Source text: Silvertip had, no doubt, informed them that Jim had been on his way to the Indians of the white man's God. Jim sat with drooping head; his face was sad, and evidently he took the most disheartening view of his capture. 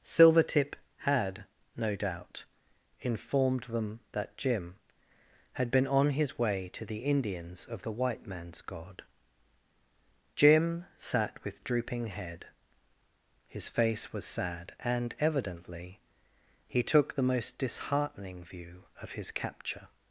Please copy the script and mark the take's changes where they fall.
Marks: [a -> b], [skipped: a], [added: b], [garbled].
Silvertip had, no doubt, informed them that Jim had been on his way to the Indians of the white man's God. Jim sat with drooping head; his face was sad, and evidently he took the most disheartening view of his capture.